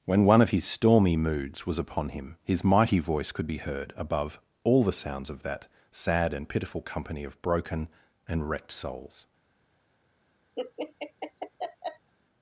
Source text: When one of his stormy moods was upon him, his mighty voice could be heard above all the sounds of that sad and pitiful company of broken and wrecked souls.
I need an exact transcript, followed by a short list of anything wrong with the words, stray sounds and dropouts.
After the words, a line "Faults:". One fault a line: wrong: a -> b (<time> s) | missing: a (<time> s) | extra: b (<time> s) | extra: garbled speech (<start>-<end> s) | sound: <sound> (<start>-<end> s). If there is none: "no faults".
When one of his stormy moods was upon him, his mighty voice could be heard above all the sounds of that sad and pitiful company of broken and wrecked souls.
Faults:
sound: laugh (10.6-12.1 s)